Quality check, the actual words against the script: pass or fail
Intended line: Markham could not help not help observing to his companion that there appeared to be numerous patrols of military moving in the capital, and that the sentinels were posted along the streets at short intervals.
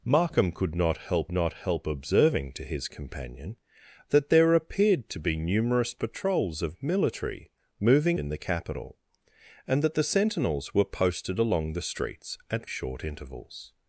pass